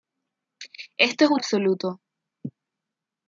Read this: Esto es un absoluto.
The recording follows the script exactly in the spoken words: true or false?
true